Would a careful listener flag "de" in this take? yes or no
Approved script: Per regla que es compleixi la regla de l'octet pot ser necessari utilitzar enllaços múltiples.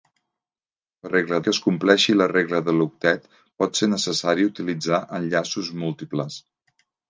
no